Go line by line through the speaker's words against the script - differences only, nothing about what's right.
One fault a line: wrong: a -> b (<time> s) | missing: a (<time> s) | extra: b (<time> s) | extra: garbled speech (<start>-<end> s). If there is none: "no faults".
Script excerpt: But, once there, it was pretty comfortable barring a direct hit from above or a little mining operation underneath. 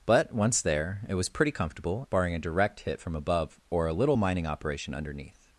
no faults